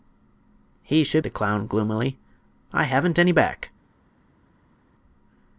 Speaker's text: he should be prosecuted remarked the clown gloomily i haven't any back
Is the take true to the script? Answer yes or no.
no